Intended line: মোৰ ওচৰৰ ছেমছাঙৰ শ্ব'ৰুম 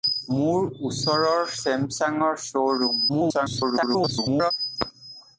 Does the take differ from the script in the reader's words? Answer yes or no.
yes